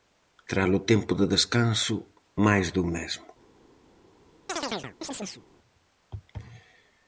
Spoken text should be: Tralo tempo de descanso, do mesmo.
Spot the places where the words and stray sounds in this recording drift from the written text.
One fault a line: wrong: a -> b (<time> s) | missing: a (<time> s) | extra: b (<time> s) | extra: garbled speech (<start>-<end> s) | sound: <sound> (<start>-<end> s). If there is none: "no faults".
extra: máis (2.4 s)
sound: chirp (4.5-5.4 s)